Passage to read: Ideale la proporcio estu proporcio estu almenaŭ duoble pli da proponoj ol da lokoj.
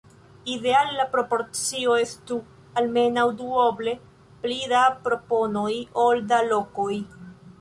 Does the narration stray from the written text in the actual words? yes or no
yes